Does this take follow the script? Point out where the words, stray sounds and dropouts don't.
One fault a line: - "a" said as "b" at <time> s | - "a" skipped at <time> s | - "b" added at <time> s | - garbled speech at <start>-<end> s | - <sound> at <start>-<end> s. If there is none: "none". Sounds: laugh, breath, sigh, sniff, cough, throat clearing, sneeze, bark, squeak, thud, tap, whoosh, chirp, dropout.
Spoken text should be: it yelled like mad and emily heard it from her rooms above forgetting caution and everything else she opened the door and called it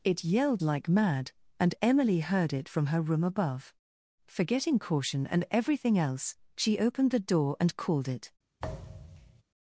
- "rooms" said as "room" at 3.0 s
- thud at 8.6-9.4 s